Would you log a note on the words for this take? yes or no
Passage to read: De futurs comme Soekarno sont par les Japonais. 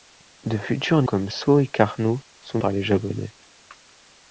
no